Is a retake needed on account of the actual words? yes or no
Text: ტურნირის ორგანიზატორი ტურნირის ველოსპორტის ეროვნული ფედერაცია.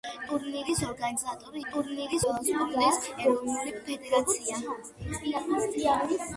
no